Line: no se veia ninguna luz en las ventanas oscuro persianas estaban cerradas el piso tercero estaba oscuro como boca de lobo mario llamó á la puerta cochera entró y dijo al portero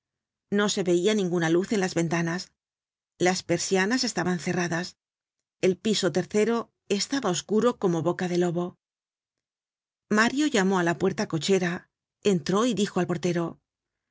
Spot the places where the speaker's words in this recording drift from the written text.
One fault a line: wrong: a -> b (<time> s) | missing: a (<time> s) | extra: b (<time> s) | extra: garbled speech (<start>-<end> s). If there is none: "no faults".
wrong: oscuro -> las (3.3 s)